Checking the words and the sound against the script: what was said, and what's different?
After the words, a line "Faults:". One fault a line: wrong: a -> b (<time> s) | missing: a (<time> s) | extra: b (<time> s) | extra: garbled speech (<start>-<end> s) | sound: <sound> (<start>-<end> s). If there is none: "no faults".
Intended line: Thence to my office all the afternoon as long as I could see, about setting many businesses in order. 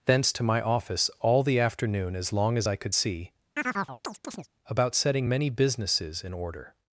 Thence to my office all the afternoon as long as I could see, about setting many businesses in order.
Faults:
sound: chirp (3.6-4.5 s)